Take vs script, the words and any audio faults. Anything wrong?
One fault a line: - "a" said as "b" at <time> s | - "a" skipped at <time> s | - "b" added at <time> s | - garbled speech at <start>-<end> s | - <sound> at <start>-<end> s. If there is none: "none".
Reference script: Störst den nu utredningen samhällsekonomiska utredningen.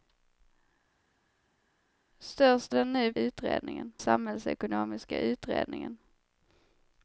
none